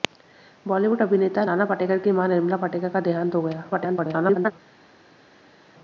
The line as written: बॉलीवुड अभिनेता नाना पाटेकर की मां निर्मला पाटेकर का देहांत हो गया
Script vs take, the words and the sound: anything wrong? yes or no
yes